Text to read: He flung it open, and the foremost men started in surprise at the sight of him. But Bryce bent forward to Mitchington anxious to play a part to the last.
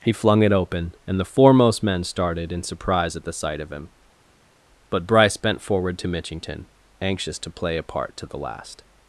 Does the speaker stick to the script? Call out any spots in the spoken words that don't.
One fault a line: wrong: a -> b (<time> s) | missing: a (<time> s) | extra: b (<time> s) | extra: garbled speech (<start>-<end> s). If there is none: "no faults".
no faults